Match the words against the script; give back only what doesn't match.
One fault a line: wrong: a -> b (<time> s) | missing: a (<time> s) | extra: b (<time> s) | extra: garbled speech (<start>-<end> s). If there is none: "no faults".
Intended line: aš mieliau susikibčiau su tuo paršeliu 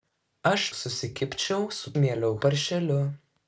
missing: mieliau (0.6 s)
wrong: tuo -> mieliau (2.0 s)